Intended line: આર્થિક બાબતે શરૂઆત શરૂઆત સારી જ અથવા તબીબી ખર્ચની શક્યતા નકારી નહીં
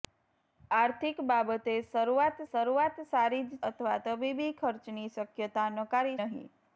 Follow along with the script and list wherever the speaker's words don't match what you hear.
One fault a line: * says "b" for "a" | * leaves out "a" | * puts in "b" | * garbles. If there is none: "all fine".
all fine